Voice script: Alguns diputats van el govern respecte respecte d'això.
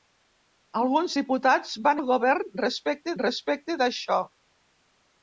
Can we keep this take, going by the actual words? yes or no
yes